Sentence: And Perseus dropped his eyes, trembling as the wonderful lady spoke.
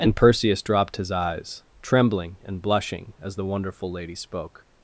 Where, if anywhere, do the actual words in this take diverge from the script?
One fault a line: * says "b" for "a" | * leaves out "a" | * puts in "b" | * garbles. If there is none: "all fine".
* puts in "and blushing"